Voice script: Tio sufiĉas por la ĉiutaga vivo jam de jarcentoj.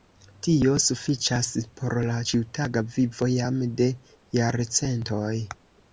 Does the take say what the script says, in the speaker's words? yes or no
yes